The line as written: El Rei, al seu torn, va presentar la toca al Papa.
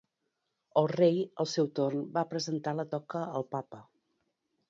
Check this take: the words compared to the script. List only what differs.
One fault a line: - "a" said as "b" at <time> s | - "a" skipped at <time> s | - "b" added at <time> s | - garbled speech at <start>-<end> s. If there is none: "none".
none